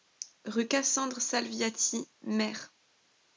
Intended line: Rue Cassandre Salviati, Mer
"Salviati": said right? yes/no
yes